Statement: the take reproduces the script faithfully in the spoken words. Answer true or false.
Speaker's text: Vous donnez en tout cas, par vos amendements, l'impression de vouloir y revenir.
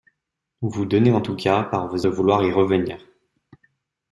false